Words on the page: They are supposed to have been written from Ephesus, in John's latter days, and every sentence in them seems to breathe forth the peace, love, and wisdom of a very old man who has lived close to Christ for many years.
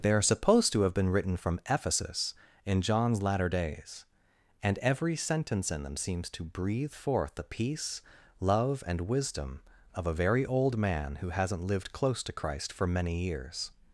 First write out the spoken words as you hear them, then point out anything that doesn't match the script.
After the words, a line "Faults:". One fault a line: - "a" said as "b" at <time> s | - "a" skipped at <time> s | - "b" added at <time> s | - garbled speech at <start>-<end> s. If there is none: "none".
They are supposed to have been written from Ephesus, in John's latter days, and every sentence in them seems to breathe forth the peace, love, and wisdom of a very old man who hasn't lived close to Christ for many years.
Faults:
- "has" said as "hasn't" at 11.3 s